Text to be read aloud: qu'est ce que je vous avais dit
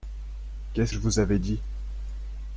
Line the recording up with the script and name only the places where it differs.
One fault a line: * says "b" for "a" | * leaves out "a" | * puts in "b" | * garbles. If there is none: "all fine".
* leaves out "que"